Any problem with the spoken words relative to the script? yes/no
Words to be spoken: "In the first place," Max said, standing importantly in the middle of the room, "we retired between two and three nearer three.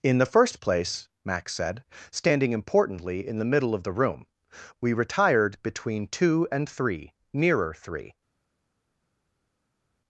no